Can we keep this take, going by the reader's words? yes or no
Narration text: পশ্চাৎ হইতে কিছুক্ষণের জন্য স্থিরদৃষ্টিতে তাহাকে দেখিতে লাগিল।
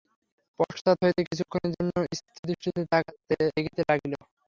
no